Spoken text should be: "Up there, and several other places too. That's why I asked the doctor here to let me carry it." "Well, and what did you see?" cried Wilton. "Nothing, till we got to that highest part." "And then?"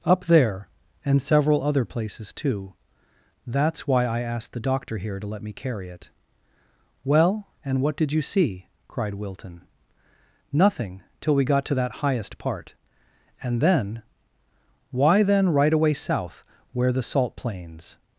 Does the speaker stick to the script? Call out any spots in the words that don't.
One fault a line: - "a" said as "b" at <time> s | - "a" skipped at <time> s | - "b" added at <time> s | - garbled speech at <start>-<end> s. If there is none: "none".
- "Why then right away south where the salt plains" added at 14.9 s